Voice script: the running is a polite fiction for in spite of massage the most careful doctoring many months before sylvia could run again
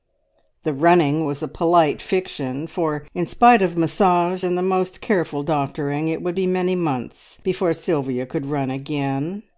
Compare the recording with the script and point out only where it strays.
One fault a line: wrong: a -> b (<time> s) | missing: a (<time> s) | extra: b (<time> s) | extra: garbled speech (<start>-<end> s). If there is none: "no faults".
wrong: is -> was (1.3 s)
extra: and (4.4 s)
extra: it would be (6.1 s)